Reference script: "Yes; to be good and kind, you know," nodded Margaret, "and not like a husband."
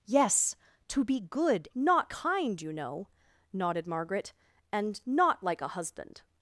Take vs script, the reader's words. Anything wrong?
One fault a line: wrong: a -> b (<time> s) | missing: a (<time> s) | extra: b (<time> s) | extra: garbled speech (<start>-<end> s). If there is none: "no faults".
wrong: and -> not (1.7 s)